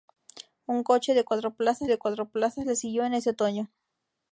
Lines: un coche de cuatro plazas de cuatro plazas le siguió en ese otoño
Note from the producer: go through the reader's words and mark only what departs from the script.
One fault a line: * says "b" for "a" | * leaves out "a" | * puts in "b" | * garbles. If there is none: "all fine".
all fine